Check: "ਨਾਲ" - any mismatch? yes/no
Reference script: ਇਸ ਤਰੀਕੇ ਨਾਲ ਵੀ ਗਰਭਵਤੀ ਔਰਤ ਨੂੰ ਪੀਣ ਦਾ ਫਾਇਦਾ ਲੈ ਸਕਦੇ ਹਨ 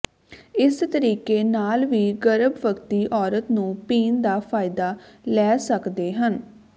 no